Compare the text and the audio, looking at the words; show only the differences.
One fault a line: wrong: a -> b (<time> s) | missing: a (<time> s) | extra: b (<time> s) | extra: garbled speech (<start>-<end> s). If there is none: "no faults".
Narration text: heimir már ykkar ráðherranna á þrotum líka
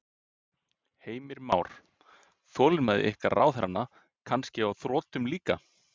extra: þolinmæði (2.5 s)
extra: kannski (4.3 s)